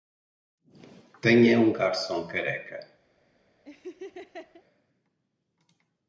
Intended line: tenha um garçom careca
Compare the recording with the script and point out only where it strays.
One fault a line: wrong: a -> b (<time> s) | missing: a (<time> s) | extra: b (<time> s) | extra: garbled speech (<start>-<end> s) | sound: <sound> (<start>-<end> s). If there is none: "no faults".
sound: laugh (3.7-4.6 s)